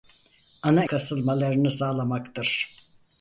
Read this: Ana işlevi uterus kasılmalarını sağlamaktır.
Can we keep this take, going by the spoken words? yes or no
no